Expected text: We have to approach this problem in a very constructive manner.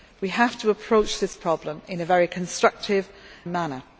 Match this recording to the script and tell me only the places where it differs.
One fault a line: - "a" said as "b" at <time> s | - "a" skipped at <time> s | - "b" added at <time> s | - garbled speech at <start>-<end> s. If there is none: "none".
none